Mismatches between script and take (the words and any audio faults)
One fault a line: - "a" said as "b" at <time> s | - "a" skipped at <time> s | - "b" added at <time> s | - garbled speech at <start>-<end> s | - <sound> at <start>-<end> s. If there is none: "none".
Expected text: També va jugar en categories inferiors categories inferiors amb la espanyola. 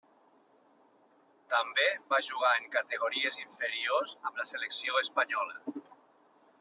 - "categories inferiors" skipped at 4.1 s
- "selecció" added at 4.5 s